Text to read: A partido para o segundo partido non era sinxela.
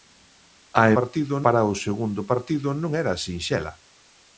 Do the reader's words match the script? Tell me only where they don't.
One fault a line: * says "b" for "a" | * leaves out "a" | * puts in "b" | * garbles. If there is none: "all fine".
all fine